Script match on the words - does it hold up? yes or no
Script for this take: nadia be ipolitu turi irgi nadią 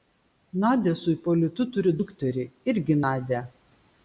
no